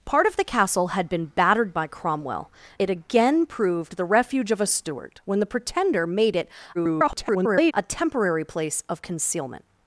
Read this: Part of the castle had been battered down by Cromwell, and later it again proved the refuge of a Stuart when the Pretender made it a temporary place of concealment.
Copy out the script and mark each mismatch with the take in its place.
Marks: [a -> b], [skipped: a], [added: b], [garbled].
Part of the castle had been battered [skipped: down] by Cromwell, [skipped: and later] it again proved the refuge of a Stuart when the Pretender made it [garbled] a temporary place of concealment.